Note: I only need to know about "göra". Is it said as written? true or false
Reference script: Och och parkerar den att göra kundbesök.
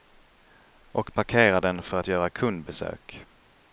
true